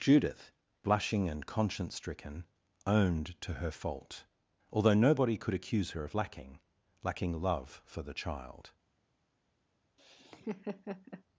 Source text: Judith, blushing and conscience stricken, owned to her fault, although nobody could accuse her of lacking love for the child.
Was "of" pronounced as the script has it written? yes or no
yes